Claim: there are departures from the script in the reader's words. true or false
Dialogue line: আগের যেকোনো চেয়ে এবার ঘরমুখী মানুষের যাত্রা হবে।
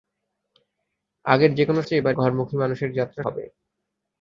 false